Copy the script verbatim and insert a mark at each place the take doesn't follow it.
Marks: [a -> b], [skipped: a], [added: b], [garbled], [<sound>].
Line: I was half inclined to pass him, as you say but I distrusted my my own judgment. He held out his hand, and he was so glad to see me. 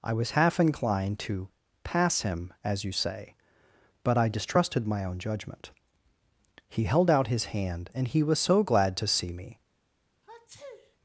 I was half inclined to pass him, as you say but I distrusted my [skipped: my] own judgment. He held out his hand, and he was so glad to see me. [sneeze]